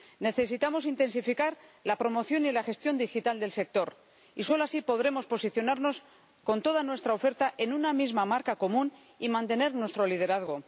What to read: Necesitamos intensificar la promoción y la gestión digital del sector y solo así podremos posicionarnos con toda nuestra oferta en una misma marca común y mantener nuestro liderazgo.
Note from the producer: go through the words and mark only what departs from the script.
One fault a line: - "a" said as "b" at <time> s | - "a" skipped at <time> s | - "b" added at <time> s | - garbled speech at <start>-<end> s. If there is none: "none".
none